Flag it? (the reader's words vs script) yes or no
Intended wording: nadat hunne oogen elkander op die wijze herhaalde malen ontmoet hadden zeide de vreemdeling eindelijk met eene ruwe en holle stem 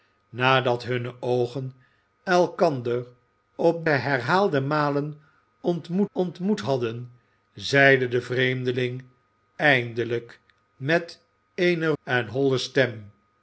yes